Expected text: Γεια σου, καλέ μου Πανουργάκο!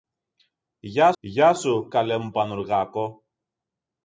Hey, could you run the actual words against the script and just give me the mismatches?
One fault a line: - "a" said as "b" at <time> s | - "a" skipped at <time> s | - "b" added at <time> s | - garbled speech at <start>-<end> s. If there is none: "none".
- "γεια" added at 1.2 s